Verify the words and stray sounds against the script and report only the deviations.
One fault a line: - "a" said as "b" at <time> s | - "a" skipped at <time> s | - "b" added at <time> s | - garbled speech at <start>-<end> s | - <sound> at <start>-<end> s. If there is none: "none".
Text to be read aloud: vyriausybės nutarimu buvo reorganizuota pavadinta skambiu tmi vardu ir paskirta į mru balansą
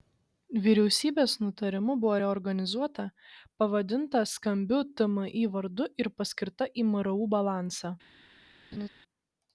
- laugh at 8.7-8.9 s